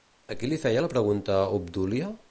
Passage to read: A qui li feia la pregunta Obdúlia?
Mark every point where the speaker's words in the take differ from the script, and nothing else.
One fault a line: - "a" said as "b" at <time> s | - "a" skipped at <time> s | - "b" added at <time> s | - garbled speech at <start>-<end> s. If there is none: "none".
none